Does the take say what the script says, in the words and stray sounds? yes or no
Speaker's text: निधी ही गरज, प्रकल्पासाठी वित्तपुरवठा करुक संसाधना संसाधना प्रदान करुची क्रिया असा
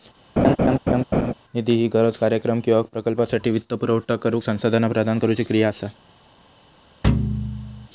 no